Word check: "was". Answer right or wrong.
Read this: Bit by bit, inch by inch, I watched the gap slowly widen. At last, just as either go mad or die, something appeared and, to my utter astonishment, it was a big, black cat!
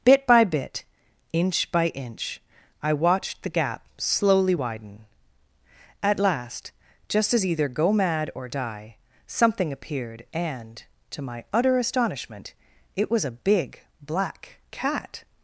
right